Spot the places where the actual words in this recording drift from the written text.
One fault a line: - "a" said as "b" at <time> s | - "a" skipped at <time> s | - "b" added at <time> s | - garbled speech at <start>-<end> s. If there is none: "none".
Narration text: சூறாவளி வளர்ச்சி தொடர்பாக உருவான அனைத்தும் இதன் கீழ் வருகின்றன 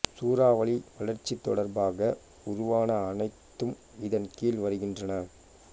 none